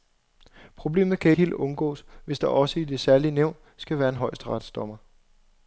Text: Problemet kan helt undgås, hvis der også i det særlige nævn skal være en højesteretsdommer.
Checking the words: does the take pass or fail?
pass